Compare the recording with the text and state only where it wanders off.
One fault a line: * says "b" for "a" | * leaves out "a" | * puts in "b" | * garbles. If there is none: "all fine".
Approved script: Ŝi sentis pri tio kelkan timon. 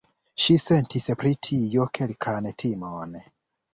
all fine